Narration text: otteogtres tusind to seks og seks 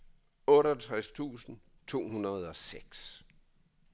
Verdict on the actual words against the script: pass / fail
fail